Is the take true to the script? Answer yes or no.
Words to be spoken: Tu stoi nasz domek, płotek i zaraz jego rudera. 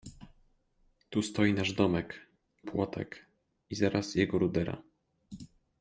yes